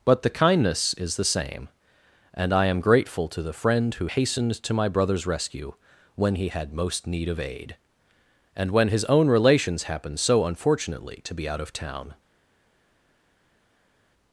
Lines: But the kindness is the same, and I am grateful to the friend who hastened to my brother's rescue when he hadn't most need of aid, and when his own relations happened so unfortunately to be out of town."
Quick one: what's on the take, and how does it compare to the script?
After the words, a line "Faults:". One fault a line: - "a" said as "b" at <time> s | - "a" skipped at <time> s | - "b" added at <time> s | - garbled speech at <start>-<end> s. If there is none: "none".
But the kindness is the same, and I am grateful to the friend who hastened to my brother's rescue when he had most need of aid, and when his own relations happened so unfortunately to be out of town."
Faults:
- "hadn't" said as "had" at 6.5 s